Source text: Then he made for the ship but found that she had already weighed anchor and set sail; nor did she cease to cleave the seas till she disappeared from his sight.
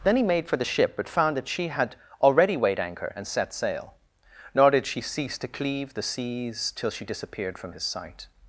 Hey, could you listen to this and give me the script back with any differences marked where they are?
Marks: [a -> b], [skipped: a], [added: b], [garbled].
Then he made for the ship but found that she had already weighed anchor and set sail; nor did she cease to cleave the seas till she disappeared from his sight.